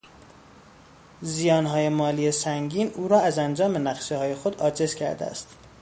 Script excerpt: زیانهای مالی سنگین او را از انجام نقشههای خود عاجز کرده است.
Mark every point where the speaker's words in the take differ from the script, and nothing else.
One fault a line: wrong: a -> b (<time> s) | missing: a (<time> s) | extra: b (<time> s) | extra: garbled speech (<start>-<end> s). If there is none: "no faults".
no faults